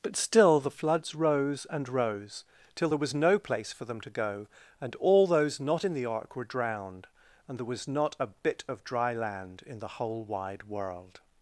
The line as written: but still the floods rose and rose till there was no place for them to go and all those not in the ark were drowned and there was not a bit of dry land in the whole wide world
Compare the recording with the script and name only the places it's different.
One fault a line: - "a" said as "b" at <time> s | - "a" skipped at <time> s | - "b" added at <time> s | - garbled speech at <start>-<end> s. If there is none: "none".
none